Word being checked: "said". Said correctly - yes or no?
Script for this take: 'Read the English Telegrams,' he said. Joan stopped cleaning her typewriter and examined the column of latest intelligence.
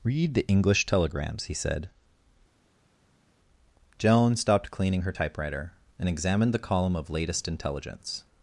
yes